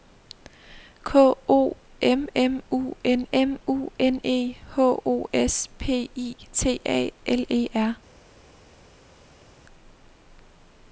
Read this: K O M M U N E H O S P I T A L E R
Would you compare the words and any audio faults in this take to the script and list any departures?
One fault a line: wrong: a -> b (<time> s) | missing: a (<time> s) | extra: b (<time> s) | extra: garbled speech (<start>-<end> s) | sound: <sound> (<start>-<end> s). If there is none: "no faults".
extra: M U N (3.3 s)